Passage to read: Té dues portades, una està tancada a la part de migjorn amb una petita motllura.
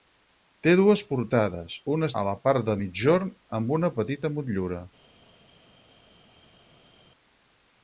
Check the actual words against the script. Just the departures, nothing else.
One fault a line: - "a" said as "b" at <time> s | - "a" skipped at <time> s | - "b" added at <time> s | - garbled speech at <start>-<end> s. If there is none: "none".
- "està tancada" skipped at 2.1 s